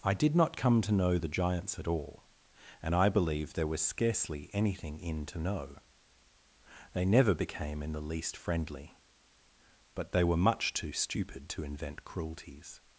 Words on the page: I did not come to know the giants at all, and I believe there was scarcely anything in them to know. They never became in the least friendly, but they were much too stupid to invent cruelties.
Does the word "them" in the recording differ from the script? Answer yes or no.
yes